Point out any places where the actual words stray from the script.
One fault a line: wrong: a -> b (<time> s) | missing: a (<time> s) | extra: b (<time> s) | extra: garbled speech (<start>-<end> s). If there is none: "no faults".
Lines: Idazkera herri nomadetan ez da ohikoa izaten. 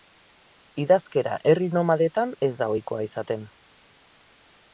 no faults